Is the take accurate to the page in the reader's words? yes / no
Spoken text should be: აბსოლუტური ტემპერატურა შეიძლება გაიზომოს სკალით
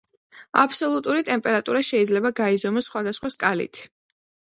no